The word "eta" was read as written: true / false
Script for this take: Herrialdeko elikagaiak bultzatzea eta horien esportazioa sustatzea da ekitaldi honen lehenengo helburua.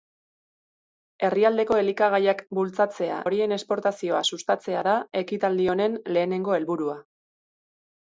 false